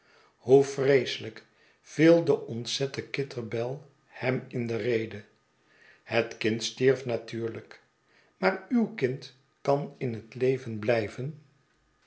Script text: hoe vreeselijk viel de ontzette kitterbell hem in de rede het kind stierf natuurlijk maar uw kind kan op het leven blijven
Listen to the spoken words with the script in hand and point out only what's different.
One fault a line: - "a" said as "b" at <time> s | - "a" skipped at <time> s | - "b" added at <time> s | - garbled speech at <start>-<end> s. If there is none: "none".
- "op" said as "in" at 10.0 s